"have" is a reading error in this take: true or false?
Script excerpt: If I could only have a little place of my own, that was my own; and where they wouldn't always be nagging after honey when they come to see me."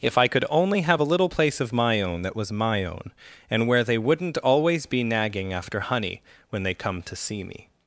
false